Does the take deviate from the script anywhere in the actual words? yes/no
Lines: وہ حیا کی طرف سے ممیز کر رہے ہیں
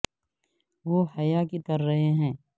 yes